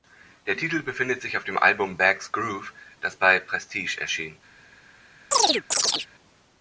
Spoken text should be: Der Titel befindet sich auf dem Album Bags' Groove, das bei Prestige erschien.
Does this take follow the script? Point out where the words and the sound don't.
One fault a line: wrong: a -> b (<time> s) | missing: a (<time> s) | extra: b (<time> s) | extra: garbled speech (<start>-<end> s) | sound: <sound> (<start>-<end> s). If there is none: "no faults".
sound: chirp (5.3-6.1 s)